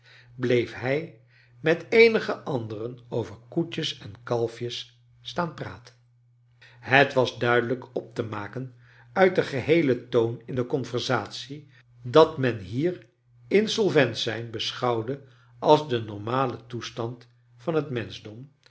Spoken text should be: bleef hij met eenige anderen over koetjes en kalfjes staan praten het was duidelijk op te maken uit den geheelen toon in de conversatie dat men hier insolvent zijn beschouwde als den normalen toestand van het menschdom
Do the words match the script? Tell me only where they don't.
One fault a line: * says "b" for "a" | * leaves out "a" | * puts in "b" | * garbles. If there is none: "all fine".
all fine